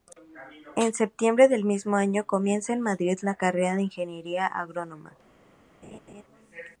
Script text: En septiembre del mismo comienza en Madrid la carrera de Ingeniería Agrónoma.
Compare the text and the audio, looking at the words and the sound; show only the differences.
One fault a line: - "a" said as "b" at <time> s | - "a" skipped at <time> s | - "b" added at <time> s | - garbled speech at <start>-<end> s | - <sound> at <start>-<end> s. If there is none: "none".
- "año" added at 1.9 s
- laugh at 5.8-6.2 s